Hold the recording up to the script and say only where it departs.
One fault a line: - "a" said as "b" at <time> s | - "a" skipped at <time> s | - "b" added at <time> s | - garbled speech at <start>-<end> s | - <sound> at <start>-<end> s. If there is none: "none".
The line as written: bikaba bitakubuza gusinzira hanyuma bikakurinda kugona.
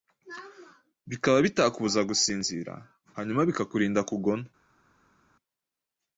none